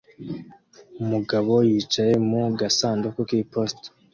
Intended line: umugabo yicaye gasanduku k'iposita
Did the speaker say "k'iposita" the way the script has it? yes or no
yes